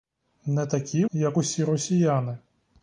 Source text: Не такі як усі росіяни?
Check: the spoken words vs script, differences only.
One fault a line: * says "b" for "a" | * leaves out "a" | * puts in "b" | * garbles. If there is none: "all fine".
all fine